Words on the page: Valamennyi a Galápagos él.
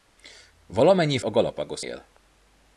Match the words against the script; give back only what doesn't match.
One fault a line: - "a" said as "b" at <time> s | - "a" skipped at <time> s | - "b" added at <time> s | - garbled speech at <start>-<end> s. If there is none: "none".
none